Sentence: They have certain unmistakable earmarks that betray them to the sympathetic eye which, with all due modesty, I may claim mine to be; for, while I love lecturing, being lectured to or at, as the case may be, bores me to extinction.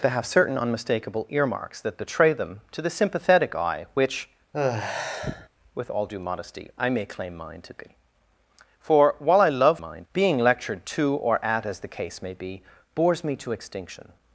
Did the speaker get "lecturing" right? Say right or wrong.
wrong